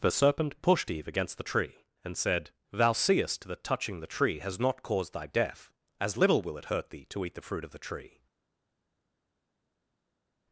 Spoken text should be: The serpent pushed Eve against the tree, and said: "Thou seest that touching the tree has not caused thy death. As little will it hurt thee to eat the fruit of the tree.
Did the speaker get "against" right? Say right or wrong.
right